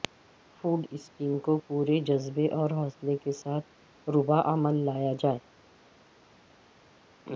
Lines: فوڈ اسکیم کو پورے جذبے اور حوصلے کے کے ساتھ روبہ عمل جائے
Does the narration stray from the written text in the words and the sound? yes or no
yes